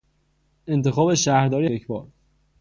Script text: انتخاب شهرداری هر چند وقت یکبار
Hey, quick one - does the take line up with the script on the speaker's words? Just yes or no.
no